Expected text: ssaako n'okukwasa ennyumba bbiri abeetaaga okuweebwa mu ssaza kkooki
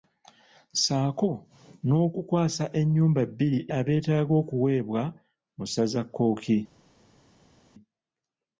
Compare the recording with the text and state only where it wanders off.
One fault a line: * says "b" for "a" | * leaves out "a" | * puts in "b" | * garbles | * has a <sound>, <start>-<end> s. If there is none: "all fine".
all fine